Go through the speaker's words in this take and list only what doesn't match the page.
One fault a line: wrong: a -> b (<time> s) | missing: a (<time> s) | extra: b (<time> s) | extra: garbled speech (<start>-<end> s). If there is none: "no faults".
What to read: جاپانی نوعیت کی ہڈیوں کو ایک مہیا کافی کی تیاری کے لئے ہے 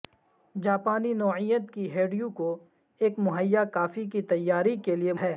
no faults